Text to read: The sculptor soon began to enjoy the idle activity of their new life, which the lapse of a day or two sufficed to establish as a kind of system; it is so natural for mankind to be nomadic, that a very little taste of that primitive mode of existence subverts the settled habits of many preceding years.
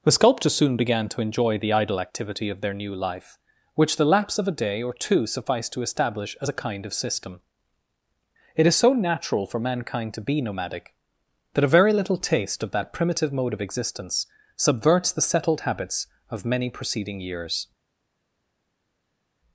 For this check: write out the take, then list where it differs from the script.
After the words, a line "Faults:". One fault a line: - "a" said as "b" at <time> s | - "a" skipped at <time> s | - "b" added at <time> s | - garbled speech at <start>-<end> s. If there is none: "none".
The sculptor soon began to enjoy the idle activity of their new life, which the lapse of a day or two sufficed to establish as a kind of system; it is so natural for mankind to be nomadic, that a very little taste of that primitive mode of existence subverts the settled habits of many preceding years.
Faults:
none